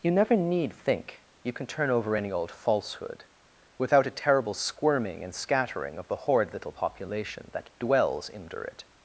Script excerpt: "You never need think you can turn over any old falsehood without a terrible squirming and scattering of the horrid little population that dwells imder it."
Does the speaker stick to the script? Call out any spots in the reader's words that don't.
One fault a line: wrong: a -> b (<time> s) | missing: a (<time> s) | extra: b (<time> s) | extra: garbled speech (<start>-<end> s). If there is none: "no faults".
no faults